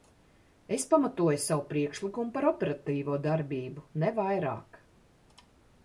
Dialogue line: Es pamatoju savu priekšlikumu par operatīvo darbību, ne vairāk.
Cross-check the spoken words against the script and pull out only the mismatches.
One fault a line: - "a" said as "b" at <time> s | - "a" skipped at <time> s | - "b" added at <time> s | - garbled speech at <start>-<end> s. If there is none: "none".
none